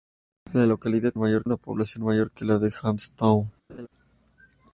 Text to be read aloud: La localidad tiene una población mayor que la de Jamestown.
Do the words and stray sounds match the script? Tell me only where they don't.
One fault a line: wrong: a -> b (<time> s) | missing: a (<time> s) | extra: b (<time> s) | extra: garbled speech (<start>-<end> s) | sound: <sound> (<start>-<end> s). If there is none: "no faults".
wrong: tiene -> mayor (1.2 s)
sound: laugh (3.7-3.9 s)